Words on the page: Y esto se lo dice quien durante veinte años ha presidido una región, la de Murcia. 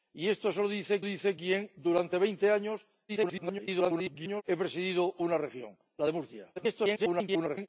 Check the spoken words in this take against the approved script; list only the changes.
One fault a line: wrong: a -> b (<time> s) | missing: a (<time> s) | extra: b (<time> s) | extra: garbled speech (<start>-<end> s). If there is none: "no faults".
extra: dice (1.0 s)
extra: garbled speech (3.1-4.4 s)
extra: garbled speech (6.6-7.7 s)